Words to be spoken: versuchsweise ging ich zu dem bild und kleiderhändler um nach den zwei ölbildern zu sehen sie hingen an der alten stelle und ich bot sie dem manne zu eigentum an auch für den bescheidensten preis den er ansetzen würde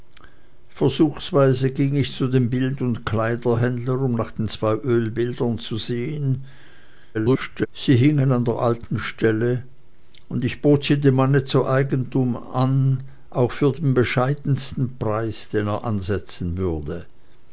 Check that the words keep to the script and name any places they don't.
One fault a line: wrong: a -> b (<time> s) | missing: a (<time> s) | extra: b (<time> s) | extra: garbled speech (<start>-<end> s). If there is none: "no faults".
extra: garbled speech (7.1-7.7 s)